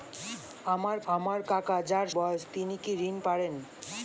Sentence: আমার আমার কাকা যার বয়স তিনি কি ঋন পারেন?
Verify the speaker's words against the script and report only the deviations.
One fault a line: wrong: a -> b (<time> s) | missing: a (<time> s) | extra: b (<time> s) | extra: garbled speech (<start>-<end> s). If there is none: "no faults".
no faults